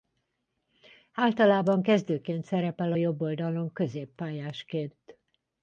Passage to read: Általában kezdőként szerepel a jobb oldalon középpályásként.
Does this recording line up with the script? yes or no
yes